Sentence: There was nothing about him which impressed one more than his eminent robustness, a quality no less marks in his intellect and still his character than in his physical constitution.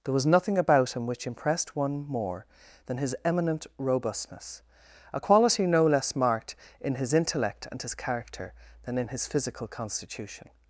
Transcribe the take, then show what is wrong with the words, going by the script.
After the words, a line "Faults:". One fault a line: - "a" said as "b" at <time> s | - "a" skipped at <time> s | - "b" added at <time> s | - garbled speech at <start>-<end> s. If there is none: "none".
There was nothing about him which impressed one more than his eminent robustness, a quality no less marked in his intellect and his character than in his physical constitution.
Faults:
- "marks" said as "marked" at 6.1 s
- "still" skipped at 7.8 s